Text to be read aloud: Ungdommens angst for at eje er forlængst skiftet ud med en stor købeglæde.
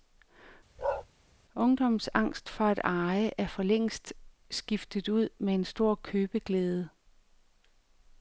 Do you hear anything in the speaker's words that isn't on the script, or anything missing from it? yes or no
no